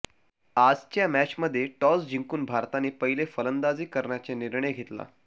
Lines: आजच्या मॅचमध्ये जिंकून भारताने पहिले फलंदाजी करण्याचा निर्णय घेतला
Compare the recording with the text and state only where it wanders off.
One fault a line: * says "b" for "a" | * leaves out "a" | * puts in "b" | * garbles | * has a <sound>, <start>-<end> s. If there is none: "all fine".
* puts in "टॉस"